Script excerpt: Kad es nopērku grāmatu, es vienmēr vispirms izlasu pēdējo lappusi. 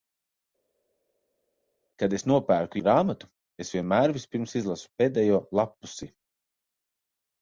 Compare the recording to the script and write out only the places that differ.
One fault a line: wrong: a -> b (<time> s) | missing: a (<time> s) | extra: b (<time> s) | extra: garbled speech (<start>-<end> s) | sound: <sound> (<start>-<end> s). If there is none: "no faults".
no faults